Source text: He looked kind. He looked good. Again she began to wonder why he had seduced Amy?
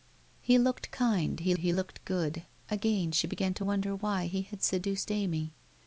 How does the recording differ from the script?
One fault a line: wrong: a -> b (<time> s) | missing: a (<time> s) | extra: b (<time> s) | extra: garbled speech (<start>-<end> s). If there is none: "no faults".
extra: he (1.6 s)